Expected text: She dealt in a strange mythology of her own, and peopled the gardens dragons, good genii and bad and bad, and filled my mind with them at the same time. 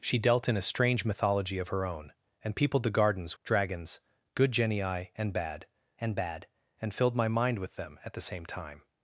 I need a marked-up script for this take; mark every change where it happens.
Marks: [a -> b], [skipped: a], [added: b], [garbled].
She dealt in a strange mythology of her own, and peopled the gardens dragons, good genii and bad and bad, and filled my mind with them at the same time.